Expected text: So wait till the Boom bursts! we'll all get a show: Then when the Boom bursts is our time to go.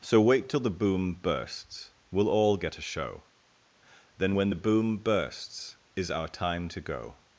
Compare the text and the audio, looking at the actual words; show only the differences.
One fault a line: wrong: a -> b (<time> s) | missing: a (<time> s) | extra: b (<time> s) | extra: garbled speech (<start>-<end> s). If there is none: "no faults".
no faults